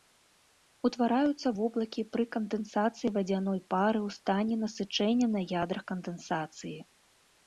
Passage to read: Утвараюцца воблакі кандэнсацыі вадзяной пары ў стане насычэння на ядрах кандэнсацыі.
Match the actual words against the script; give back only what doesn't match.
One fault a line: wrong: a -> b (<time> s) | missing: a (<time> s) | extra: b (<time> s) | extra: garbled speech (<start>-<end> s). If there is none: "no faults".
extra: пры (2.1 s)